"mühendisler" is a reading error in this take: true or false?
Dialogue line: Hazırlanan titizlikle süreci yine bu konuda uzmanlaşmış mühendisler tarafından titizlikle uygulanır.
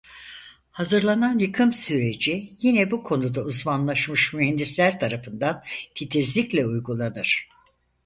false